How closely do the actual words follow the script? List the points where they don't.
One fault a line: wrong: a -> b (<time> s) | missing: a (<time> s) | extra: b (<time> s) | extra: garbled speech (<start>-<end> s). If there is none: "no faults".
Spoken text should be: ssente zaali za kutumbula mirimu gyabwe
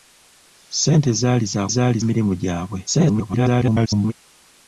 wrong: kutumbula -> zaali (1.7 s)
extra: garbled speech (2.9-4.1 s)